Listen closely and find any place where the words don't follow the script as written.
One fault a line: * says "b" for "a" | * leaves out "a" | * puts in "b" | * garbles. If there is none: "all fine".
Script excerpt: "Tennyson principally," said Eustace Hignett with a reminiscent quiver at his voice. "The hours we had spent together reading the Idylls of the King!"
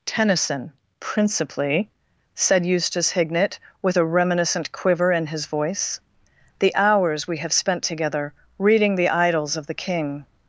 * says "in" for "at"
* says "have" for "had"